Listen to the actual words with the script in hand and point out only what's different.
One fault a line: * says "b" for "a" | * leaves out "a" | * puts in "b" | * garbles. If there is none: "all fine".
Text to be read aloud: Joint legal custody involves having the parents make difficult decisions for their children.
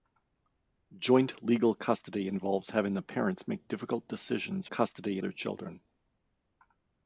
* says "custody" for "for"